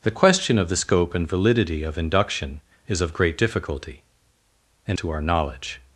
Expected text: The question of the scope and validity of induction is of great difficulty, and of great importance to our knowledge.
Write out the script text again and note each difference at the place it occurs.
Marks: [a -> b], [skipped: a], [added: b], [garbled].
The question of the scope and validity of induction is of great difficulty, and [skipped: of great importance] to our knowledge.